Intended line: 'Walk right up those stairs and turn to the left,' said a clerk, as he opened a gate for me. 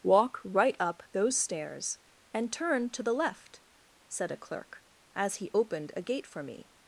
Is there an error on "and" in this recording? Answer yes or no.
no